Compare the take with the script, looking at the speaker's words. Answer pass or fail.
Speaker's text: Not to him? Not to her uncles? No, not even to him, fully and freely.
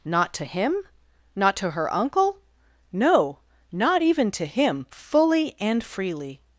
fail